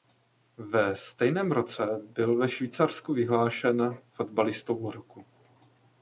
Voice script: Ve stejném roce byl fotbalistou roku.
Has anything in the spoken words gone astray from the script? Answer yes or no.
yes